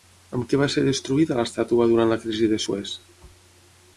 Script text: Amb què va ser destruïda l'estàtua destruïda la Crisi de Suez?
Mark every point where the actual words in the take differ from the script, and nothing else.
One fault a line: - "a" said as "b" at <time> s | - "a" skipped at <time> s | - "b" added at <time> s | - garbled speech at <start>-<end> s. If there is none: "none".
- "destruïda" said as "durant" at 1.9 s